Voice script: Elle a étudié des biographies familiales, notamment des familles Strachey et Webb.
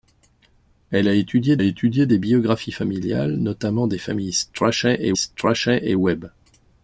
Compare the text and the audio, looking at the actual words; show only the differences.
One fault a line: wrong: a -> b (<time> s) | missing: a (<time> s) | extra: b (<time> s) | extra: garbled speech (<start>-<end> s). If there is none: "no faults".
extra: étudié (1.6 s)
extra: Strachey et (5.1 s)